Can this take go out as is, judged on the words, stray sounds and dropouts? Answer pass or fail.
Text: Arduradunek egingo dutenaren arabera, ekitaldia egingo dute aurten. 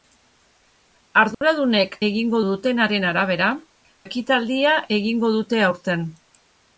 fail